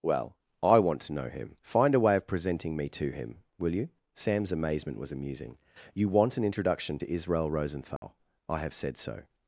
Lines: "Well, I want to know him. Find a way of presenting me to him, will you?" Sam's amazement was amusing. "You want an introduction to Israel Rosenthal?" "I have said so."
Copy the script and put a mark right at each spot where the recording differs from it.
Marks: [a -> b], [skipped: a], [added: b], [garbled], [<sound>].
"Well, I want to know him. Find a way of presenting me to him, will you?" Sam's amazement was amusing. "You want an introduction to Israel Rosenthal?" [dropout] "I have said so."